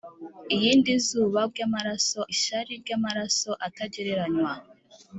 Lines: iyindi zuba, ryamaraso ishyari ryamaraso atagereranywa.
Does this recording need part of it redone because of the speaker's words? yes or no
no